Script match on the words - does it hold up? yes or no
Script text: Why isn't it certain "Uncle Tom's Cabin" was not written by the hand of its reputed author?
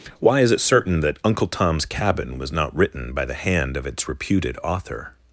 no